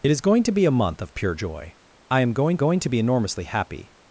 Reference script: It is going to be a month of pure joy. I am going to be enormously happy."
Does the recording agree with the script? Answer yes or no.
no